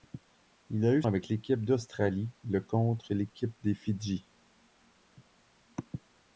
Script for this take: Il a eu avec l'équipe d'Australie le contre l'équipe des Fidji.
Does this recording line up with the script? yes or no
yes